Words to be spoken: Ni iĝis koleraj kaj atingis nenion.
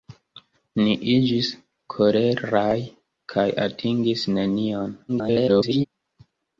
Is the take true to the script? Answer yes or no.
no